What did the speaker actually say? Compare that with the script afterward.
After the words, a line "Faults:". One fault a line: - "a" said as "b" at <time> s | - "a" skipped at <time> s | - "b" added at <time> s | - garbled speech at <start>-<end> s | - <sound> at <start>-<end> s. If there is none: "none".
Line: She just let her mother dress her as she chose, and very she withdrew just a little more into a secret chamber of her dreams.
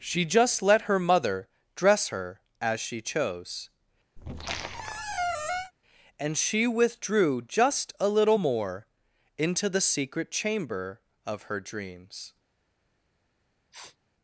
She just let her mother dress her as she chose, and she withdrew just a little more into the secret chamber of her dreams.
Faults:
- squeak at 4.2-5.7 s
- "very" skipped at 6.4 s
- "a" said as "the" at 9.7 s
- sniff at 13.7-14.0 s